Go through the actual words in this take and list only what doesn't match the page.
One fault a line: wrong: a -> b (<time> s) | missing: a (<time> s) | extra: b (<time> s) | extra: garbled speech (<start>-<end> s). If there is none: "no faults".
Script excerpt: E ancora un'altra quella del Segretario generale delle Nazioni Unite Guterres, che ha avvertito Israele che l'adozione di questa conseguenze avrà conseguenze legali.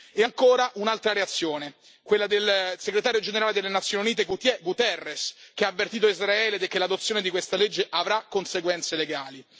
extra: reazione (1.1 s)
wrong: conseguenze -> legge (7.6 s)